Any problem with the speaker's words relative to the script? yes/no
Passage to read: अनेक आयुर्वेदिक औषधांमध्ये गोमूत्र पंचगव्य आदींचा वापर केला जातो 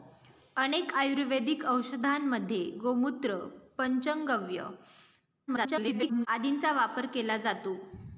yes